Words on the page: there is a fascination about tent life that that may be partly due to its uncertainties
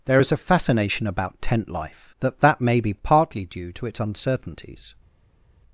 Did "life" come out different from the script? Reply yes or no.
no